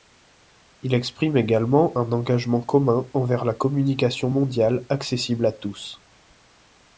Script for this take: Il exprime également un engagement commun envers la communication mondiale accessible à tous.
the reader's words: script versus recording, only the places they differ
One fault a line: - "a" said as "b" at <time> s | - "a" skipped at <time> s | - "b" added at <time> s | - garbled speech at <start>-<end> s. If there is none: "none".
none